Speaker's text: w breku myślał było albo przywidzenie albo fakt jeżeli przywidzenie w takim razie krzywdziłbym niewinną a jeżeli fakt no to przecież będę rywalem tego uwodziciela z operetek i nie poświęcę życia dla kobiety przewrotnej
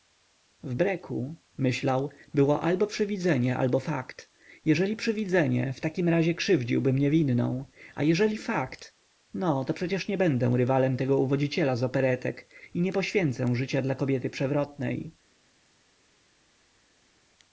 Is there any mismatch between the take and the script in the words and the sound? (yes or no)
yes